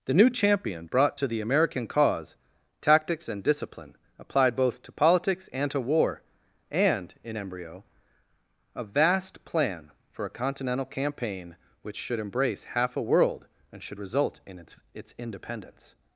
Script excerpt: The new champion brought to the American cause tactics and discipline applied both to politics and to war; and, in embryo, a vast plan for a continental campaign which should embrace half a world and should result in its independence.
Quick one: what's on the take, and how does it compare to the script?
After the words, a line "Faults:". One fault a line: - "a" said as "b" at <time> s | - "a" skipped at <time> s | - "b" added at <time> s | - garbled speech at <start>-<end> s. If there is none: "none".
The new champion brought to the American cause tactics and discipline applied both to politics and to war; and, in embryo, a vast plan for a continental campaign which should embrace half a world and should result in its its independence.
Faults:
- "its" added at 14.9 s